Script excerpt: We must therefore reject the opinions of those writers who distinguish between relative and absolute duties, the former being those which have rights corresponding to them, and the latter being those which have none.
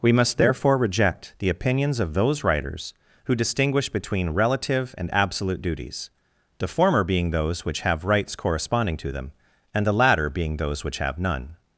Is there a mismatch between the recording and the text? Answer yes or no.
no